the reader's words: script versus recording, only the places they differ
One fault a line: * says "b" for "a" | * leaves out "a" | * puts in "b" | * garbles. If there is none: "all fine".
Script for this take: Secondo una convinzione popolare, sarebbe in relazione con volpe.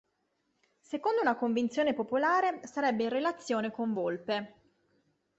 all fine